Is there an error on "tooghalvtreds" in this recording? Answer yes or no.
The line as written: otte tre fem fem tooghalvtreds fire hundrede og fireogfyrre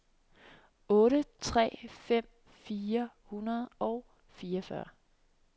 yes